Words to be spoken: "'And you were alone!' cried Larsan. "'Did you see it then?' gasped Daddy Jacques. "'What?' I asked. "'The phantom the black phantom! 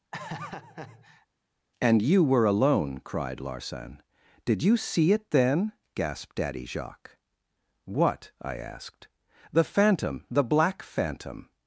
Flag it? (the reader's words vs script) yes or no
no